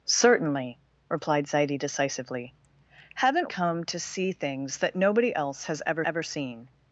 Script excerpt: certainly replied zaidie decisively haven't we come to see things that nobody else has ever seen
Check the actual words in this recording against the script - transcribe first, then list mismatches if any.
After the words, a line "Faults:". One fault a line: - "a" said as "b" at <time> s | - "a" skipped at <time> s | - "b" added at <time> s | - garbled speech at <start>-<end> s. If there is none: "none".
certainly replied zaidie decisively haven't come to see things that nobody else has ever ever seen
Faults:
- "we" skipped at 3.5 s
- "ever" added at 6.0 s